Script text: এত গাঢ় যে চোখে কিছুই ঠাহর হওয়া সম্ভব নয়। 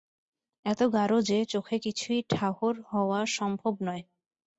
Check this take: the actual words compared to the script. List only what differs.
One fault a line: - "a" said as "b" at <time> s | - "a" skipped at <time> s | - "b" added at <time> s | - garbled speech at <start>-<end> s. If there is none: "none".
none